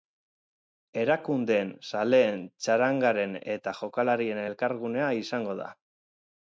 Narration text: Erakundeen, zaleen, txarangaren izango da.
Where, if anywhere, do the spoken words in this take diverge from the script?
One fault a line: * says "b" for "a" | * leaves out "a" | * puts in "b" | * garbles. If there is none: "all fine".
* puts in "eta jokalarien elkargunea"